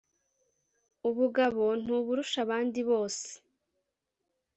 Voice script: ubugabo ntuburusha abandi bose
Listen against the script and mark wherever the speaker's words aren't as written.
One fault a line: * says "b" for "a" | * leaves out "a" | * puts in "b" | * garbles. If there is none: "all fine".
all fine